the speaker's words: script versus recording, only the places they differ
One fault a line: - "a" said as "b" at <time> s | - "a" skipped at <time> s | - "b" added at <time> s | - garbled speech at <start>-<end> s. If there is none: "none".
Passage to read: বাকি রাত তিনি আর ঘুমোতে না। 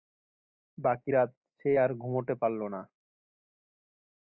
- "তিনি" said as "সে" at 1.6 s
- "পারল" added at 2.4 s